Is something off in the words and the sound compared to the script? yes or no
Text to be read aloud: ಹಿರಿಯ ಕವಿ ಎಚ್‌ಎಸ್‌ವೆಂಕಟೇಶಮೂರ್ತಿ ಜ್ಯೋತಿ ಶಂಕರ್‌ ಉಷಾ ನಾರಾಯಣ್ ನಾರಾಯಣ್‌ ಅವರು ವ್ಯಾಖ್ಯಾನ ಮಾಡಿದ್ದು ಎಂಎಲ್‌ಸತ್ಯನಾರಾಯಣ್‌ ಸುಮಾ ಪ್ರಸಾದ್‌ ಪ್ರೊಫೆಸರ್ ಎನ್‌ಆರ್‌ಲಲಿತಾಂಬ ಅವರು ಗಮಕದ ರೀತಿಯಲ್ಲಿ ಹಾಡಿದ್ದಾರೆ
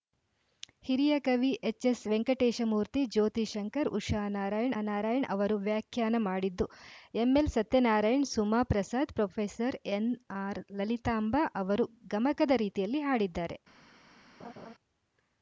yes